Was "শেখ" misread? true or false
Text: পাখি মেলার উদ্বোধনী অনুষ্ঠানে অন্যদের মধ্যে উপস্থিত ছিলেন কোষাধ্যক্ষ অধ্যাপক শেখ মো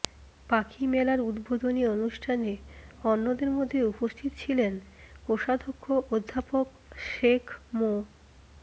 false